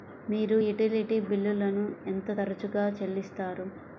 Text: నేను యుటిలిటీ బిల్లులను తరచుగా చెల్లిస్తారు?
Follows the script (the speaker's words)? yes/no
no